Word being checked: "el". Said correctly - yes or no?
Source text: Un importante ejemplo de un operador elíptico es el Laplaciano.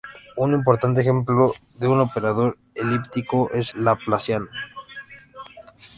no